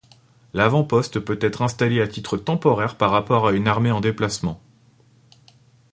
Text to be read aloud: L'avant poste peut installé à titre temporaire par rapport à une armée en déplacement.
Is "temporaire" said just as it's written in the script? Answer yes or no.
yes